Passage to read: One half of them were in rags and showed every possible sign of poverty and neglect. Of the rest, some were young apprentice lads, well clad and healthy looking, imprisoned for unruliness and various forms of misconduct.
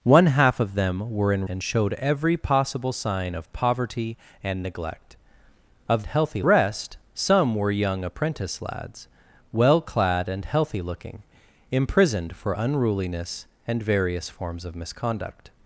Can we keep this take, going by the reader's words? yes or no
no